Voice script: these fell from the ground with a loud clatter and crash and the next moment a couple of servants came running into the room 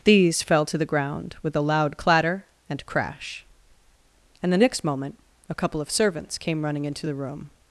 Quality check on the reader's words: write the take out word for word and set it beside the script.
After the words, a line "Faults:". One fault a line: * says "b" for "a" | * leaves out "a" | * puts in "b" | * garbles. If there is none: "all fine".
these fell to the ground with a loud clatter and crash and the next moment a couple of servants came running into the room
Faults:
* says "to" for "from"